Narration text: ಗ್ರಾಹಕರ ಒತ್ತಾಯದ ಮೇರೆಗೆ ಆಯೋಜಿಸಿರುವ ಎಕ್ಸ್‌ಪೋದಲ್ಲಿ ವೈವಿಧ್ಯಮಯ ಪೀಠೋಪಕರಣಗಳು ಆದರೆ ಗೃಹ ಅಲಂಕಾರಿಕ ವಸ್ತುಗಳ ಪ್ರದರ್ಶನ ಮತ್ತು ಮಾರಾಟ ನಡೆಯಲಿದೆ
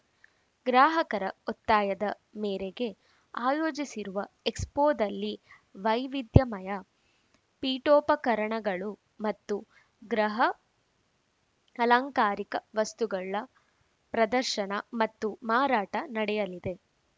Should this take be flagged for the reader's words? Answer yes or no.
yes